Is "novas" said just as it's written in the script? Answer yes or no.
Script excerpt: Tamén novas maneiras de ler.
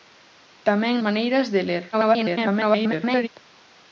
no